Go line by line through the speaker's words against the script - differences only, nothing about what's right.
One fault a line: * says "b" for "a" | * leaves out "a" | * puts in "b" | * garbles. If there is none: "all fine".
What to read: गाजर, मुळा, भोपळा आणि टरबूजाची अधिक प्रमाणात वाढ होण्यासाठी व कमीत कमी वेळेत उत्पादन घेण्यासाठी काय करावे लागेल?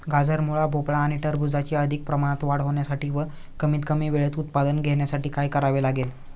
all fine